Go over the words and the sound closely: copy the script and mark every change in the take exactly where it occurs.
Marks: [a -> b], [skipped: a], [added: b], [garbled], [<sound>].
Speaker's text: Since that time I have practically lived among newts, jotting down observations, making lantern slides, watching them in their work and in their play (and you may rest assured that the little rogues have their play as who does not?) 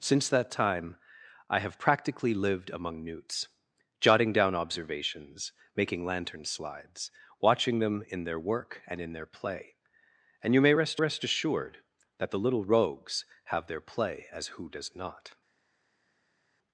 Since that time I have practically lived among newts, jotting down observations, making lantern slides, watching them in their work and in their play (and you may rest [added: rest] assured that the little rogues have their play as who does not?)